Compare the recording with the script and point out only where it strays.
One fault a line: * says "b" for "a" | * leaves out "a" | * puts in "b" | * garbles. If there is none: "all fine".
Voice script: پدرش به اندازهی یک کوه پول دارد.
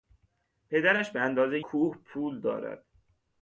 * leaves out "یک"